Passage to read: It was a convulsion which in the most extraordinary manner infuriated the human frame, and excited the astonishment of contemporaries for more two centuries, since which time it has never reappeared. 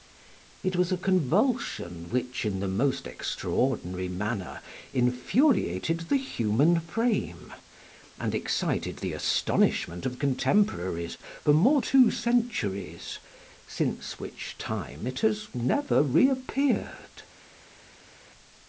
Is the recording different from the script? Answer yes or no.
no